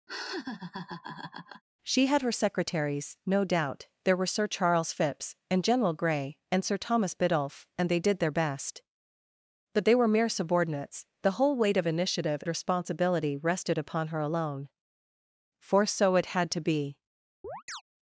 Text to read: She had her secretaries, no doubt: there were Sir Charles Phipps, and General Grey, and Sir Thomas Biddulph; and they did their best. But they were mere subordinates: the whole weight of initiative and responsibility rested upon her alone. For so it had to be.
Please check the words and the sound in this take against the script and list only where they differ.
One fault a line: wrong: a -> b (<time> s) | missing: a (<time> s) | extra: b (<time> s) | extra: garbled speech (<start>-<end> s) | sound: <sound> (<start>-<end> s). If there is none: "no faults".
sound: laugh (0.1-1.6 s)
missing: and (12.4 s)
sound: chirp (17.4-17.8 s)